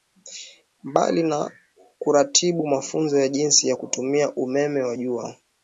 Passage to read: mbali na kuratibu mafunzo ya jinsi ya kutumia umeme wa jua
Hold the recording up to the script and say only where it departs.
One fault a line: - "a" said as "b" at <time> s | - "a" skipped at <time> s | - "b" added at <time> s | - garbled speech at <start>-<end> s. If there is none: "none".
none